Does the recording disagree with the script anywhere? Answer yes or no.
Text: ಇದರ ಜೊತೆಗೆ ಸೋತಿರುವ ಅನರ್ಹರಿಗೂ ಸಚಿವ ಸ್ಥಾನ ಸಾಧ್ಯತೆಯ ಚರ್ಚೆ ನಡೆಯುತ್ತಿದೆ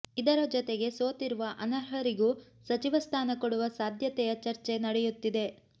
yes